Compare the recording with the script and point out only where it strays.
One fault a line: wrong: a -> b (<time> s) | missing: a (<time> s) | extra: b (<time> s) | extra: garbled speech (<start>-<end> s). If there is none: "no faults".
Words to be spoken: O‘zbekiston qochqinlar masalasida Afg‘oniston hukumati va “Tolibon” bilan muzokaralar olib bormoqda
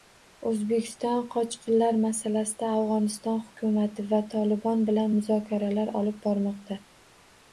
no faults